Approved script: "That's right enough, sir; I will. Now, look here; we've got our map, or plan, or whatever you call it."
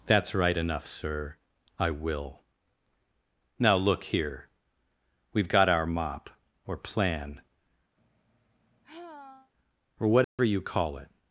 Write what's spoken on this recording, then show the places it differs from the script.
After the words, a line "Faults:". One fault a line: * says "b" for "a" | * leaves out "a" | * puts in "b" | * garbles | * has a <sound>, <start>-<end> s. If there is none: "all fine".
"That's right enough, sir; I will. Now, look here; we've got our mop, or plan, or whatever you call it."
Faults:
* says "mop" for "map"
* has a sigh, 8.0-9.5 s
* has a dropout, 10.2-10.4 s